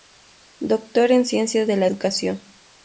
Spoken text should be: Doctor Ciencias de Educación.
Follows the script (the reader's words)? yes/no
no